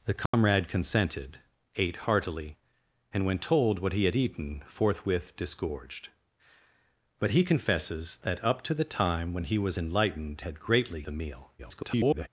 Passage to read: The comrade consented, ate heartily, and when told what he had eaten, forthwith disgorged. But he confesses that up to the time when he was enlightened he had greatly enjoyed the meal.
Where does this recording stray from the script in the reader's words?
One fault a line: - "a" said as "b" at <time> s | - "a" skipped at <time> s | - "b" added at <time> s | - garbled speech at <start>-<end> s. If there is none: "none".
- "he" skipped at 10.4 s
- "enjoyed" skipped at 11.1 s
- garbled speech at 11.6-12.3 s